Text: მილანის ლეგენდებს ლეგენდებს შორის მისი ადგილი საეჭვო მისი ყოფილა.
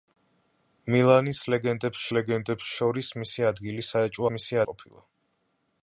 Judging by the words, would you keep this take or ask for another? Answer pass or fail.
pass